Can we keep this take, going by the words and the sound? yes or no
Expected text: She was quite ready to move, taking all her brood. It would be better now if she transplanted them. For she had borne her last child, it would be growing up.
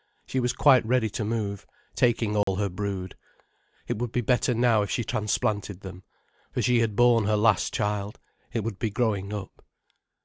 no